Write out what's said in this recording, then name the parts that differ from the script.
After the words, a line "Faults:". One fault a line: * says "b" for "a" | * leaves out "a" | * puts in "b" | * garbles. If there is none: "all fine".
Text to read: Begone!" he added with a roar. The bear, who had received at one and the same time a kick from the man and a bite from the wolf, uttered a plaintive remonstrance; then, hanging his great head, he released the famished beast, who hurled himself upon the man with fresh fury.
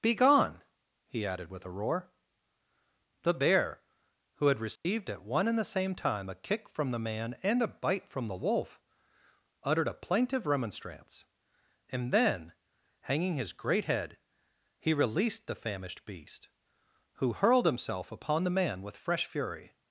Begone!" he added with a roar. The bear, who had received at one and the same time a kick from the man and a bite from the wolf, uttered a plaintive remonstrance; and then, hanging his great head, he released the famished beast, who hurled himself upon the man with fresh fury.
Faults:
* puts in "and"